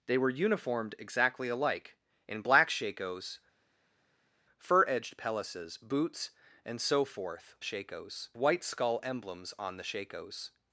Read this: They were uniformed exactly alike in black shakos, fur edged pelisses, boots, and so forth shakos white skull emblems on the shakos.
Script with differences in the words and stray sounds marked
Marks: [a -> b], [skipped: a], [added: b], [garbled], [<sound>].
They were uniformed exactly alike in black shakos, fur edged pelisses, boots, and so forth shakos white skull emblems on the shakos.